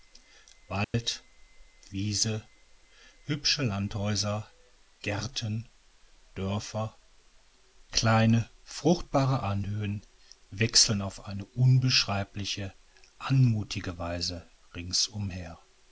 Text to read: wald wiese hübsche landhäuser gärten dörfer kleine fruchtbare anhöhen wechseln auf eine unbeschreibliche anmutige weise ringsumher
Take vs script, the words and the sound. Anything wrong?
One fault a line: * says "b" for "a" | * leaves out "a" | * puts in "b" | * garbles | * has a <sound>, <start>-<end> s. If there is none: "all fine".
* has a dropout, 0.8-0.9 s